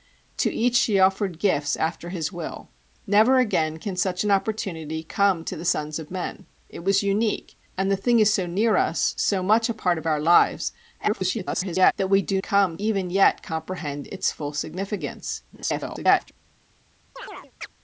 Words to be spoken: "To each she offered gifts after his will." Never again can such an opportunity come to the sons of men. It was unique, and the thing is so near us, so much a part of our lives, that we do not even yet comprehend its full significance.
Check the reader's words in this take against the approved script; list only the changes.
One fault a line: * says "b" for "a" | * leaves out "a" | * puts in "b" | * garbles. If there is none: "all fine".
* garbles
* says "come" for "not"
* garbles